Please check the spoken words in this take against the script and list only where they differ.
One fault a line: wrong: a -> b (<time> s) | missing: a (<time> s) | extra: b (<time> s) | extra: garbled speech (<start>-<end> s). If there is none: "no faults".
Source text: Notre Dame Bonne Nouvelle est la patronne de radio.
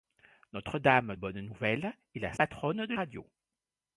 no faults